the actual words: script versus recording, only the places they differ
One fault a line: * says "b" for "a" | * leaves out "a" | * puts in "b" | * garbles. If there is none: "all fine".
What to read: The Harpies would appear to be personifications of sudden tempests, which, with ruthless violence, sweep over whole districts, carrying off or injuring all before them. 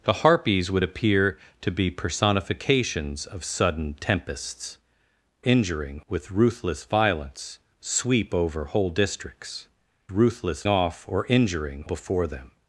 * says "injuring" for "which"
* says "ruthless" for "carrying"
* leaves out "all"